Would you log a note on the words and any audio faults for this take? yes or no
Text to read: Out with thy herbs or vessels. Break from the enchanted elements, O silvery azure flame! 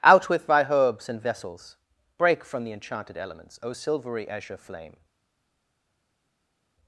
yes